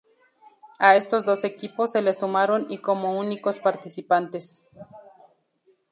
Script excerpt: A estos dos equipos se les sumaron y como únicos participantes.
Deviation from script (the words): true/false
false